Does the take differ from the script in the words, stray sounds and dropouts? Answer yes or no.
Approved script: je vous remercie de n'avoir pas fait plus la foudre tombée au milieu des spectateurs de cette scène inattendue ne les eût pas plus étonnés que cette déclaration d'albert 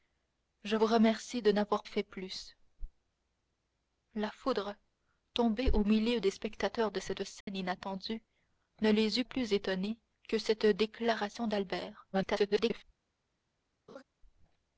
yes